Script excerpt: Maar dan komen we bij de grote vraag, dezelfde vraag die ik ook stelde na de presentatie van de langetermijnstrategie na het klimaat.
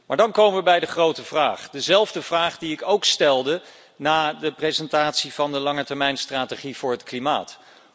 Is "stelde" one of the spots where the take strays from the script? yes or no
no